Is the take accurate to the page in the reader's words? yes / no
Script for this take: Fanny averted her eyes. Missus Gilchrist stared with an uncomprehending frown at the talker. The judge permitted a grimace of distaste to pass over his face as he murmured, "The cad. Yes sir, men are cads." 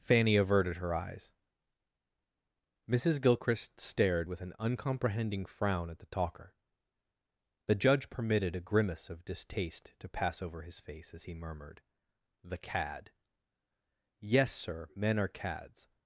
yes